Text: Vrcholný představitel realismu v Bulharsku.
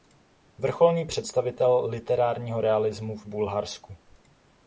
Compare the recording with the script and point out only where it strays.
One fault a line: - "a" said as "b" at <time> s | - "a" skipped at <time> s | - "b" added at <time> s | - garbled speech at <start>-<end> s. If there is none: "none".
- "literárního" added at 1.9 s